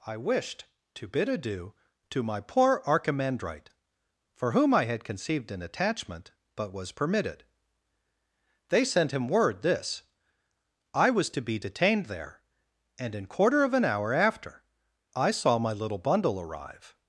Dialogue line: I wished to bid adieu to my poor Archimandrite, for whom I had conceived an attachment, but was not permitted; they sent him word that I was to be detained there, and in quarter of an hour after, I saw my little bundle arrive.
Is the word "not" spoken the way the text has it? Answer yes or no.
no